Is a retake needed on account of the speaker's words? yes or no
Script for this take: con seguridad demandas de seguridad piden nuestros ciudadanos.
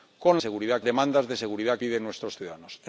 no